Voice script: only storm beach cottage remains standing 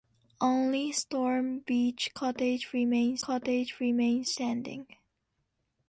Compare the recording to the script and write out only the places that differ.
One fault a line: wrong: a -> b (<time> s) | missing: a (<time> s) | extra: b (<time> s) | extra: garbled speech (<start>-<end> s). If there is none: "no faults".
extra: cottage remains (3.2 s)